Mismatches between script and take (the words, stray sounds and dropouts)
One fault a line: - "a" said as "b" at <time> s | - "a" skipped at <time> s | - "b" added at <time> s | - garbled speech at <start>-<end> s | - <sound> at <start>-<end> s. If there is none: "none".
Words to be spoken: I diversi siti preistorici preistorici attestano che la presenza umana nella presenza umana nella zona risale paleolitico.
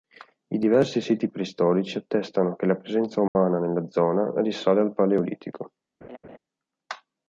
- "preistorici" skipped at 2.0 s
- dropout at 3.3-3.4 s
- "presenza umana nella" skipped at 3.9 s
- "al" added at 4.8 s
- laugh at 6.0-6.4 s